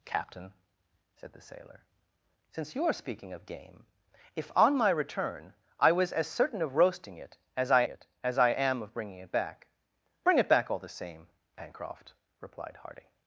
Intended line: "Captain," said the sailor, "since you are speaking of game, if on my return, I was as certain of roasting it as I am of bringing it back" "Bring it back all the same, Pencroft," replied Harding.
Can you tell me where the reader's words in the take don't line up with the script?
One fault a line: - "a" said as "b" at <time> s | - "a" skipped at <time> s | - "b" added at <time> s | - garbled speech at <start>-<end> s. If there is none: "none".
- "it as I" added at 7.9 s